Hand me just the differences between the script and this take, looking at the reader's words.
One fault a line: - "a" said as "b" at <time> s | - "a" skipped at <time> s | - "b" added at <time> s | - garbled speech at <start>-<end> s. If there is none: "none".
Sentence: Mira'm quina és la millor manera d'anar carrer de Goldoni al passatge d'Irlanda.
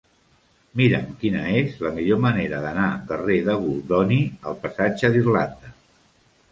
none